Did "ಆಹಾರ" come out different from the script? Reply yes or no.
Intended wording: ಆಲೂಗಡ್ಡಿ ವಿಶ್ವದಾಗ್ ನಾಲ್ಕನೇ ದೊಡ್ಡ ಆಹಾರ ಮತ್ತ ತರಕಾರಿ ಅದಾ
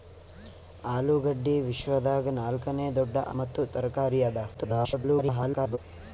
yes